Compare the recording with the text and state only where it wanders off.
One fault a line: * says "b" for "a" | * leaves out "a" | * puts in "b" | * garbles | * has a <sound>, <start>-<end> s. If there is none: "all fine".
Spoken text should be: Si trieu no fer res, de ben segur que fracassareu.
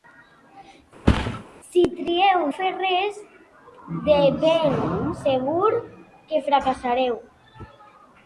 * has a thud, 1.1-1.4 s
* leaves out "no"